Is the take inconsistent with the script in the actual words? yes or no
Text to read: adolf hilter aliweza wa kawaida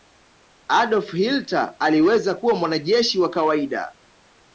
yes